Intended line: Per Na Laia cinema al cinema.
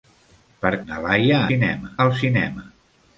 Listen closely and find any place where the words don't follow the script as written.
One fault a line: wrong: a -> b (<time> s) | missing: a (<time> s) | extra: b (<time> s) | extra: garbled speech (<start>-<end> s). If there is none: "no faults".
no faults